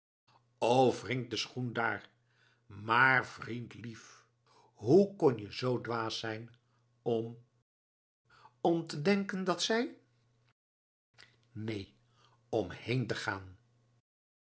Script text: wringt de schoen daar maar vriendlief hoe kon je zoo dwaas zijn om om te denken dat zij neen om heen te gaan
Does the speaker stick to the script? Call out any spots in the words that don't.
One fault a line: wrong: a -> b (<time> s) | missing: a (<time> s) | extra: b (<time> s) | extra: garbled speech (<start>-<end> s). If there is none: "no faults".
no faults